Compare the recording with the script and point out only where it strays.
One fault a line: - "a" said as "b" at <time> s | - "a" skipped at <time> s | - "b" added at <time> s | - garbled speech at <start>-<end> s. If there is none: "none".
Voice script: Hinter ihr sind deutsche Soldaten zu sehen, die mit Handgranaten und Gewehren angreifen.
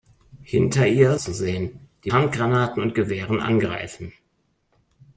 - "sind deutsche Soldaten" skipped at 1.2 s
- "mit" skipped at 2.1 s